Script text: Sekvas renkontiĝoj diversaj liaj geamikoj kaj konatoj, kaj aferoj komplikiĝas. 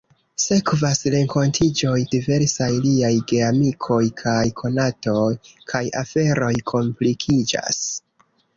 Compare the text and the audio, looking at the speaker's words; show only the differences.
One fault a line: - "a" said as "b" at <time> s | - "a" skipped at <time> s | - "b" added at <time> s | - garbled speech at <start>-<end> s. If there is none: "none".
none